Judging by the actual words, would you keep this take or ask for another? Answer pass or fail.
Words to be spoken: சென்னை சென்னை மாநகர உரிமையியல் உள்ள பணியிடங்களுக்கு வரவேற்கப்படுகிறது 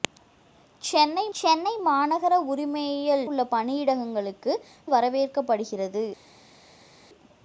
pass